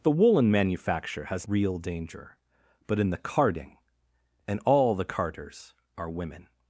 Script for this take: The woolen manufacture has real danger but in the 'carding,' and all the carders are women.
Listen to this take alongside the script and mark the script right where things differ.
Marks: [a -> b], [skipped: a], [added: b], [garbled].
The woolen manufacture has real danger but in the 'carding,' and all the carders are women.